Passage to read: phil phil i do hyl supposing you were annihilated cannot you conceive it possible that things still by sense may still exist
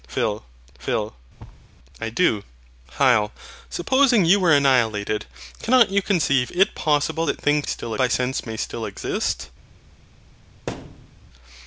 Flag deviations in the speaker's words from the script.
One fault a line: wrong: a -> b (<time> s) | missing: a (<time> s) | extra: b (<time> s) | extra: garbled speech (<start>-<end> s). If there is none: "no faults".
no faults